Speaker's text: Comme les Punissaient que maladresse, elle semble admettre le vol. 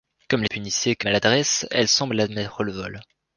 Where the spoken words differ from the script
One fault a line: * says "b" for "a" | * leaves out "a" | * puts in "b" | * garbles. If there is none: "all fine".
all fine